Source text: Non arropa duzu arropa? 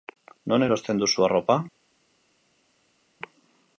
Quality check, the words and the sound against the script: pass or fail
fail